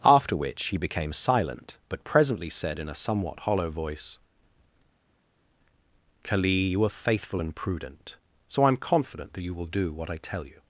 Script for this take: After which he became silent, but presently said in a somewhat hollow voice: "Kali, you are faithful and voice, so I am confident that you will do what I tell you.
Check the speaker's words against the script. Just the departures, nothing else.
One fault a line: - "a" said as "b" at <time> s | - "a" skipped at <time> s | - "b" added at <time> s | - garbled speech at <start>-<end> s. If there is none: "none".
- "voice" said as "prudent" at 7.5 s